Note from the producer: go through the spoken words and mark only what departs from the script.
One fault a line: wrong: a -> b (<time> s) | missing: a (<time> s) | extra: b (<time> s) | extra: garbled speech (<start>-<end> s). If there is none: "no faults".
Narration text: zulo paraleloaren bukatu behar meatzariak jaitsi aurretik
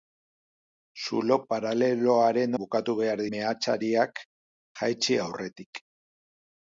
no faults